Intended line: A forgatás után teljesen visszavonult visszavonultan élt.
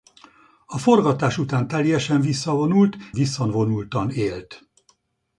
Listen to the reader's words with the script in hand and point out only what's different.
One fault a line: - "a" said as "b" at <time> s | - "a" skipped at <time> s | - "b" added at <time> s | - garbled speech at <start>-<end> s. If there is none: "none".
none